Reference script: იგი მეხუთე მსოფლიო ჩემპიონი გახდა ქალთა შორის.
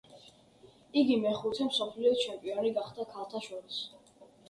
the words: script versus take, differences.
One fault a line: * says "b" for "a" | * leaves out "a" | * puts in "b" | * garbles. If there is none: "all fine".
all fine